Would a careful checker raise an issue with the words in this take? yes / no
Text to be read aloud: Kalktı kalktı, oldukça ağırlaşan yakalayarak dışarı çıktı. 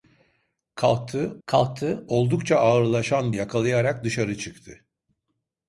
no